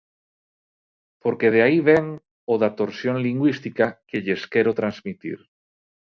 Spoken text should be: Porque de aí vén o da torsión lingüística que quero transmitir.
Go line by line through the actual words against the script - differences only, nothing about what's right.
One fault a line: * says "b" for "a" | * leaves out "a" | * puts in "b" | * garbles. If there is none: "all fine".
* puts in "lles"